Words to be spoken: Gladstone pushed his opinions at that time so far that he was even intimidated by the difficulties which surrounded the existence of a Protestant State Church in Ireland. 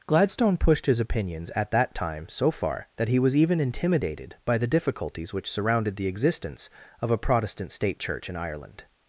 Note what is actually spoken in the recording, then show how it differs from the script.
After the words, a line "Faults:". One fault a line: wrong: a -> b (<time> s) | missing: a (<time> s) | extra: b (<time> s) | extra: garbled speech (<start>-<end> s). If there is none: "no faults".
Gladstone pushed his opinions at that time so far that he was even intimidated by the difficulties which surrounded the existence of a Protestant State Church in Ireland.
Faults:
no faults